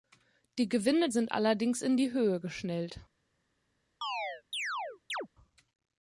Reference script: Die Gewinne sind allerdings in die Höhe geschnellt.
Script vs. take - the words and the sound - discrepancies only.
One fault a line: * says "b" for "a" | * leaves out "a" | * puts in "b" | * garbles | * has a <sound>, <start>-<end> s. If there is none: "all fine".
* has a chirp, 4.0-5.3 s